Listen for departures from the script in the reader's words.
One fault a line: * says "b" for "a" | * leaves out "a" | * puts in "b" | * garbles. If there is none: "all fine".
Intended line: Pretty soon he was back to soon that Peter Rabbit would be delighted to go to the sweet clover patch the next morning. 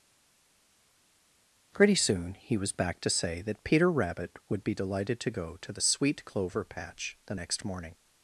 * says "say" for "soon"